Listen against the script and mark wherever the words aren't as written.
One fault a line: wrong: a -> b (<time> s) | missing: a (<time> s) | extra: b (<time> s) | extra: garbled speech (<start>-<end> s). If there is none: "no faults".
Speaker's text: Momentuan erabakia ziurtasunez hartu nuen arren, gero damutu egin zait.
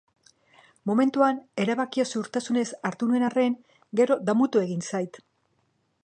no faults